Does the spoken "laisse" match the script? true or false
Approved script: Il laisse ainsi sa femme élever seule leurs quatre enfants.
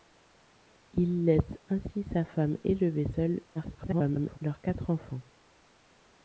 true